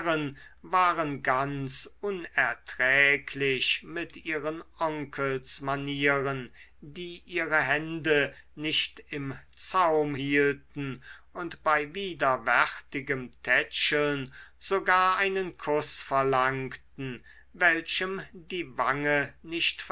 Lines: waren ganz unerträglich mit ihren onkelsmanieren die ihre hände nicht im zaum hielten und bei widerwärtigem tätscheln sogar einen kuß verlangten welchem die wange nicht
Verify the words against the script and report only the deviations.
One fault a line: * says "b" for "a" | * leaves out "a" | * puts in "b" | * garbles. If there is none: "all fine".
all fine